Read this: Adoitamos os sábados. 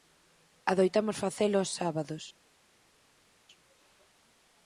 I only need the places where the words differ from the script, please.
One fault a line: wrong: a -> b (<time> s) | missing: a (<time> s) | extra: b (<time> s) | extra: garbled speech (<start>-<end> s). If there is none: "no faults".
extra: facelo (1.2 s)